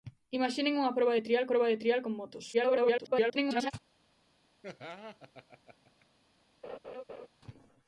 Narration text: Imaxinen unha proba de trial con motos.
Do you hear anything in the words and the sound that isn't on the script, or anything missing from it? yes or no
yes